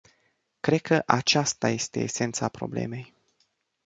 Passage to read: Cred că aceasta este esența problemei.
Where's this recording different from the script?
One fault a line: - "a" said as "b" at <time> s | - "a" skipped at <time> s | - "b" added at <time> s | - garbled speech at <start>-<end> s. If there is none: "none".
none